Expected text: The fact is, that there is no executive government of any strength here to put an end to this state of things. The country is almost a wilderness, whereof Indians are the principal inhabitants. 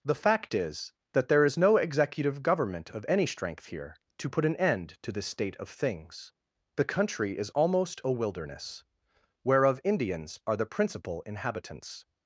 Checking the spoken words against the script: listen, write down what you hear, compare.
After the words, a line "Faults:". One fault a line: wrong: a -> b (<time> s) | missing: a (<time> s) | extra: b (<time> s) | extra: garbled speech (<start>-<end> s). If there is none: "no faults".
The fact is, that there is no executive government of any strength here to put an end to this state of things. The country is almost a wilderness, whereof Indians are the principal inhabitants.
Faults:
no faults